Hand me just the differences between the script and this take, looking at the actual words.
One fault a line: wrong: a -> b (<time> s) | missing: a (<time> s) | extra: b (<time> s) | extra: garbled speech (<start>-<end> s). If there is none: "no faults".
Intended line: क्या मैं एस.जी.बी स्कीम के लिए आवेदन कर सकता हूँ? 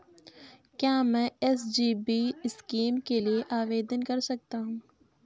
no faults